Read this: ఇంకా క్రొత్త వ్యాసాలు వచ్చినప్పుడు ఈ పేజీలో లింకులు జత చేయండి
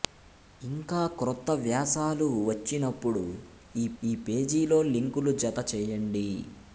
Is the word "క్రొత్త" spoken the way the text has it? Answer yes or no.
yes